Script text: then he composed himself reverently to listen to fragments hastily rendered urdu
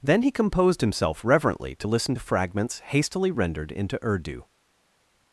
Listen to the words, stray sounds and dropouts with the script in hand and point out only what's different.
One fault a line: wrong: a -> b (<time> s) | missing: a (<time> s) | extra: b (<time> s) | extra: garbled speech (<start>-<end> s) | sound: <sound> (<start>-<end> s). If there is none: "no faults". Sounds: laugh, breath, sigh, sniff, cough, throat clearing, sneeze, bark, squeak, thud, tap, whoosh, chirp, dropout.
extra: into (3.7 s)